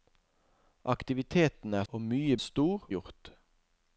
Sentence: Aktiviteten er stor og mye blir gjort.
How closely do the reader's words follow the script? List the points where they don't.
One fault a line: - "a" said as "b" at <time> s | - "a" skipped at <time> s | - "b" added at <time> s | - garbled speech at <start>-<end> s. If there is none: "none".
- "stor" skipped at 1.9 s
- "blir" said as "stor" at 2.4 s